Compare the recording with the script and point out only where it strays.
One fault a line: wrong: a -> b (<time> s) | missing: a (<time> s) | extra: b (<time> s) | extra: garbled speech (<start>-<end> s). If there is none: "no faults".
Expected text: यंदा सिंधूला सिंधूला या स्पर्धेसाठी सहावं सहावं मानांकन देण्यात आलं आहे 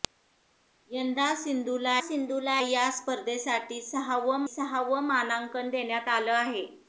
no faults